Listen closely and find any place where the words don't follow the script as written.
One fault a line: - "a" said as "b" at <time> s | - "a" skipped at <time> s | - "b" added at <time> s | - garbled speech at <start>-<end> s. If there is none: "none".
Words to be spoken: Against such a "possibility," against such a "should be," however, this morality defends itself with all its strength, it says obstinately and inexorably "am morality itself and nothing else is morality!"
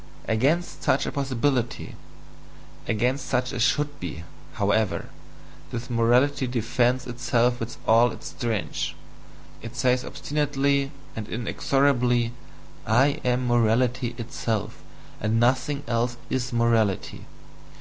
- "I" added at 12.9 s